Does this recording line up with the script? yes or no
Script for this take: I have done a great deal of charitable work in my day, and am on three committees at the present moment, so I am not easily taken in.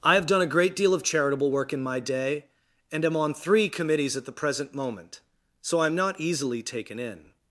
yes